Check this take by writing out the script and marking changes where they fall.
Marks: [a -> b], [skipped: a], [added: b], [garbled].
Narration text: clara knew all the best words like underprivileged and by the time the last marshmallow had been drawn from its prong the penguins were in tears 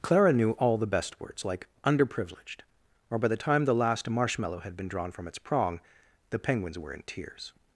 clara knew all the best words like underprivileged [and -> or] by the time the last marshmallow had been drawn from its prong the penguins were in tears